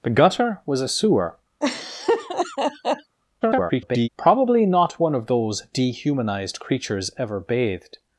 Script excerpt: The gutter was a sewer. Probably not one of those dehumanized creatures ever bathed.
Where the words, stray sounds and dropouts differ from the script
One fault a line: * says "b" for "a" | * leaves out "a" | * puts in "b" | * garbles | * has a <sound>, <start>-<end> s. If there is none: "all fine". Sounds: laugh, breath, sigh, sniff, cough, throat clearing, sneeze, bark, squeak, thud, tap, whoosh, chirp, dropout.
* has a laugh, 1.6-3.2 s
* garbles